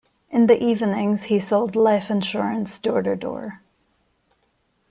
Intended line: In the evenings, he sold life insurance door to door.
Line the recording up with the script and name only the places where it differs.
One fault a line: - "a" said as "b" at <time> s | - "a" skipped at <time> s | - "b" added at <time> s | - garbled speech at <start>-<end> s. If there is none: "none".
none